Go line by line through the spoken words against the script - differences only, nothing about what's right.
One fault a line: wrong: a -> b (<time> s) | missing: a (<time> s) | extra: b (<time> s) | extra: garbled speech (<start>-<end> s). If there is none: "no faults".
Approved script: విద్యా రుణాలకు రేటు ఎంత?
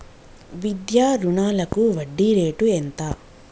extra: వడ్డీ (1.9 s)